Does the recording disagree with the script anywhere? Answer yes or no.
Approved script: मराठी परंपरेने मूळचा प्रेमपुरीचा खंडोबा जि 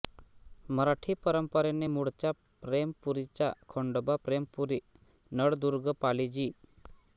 yes